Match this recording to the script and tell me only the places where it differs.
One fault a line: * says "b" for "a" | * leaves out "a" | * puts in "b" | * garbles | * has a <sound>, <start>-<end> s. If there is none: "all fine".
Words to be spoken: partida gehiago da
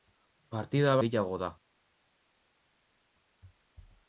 all fine